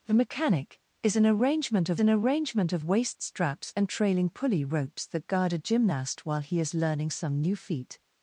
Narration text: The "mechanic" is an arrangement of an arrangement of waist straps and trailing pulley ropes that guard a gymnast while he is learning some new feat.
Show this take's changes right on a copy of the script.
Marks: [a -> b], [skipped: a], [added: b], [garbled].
The "mechanic" is an arrangement of an arrangement of waist straps and trailing pulley ropes that guard a gymnast while he is learning some new feat.